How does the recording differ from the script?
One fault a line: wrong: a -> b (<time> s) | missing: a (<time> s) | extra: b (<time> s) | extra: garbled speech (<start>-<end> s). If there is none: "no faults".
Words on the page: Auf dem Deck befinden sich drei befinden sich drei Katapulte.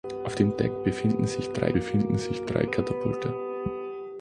no faults